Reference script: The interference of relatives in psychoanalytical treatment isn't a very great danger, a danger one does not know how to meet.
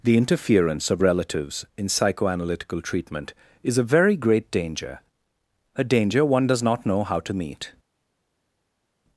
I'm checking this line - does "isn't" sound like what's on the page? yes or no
no